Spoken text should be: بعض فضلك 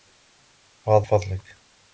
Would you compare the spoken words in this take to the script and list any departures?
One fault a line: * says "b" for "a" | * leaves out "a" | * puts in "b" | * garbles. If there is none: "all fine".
all fine